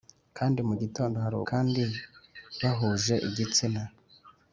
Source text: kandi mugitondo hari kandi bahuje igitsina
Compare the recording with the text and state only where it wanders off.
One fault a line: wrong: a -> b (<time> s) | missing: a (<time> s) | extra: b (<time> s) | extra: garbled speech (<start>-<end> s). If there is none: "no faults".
no faults